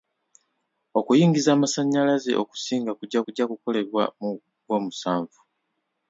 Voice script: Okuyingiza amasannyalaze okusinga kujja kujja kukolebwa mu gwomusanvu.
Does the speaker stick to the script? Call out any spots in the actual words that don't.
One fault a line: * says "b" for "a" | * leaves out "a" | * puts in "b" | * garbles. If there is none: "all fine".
all fine